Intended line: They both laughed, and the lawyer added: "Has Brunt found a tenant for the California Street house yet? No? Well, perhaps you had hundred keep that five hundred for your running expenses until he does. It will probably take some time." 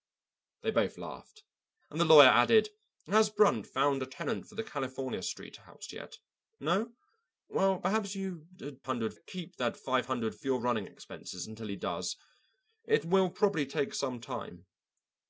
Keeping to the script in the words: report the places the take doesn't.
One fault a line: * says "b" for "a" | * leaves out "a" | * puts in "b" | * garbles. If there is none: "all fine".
all fine